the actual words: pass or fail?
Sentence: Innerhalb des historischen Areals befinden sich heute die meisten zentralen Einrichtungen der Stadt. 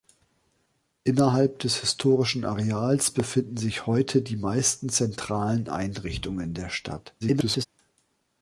fail